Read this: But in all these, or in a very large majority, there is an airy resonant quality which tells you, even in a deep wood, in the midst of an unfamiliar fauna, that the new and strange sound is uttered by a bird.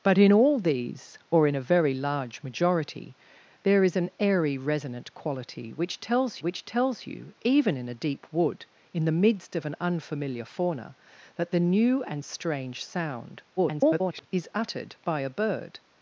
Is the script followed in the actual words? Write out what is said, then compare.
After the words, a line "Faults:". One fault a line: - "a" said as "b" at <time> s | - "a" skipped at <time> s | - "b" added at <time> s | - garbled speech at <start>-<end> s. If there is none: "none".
But in all these, or in a very large majority, there is an airy resonant quality which tells which tells you, even in a deep wood, in the midst of an unfamiliar fauna, that the new and strange sound [garbled] is uttered by a bird.
Faults:
- "which tells" added at 6.4 s
- garbled speech at 13.6-14.3 s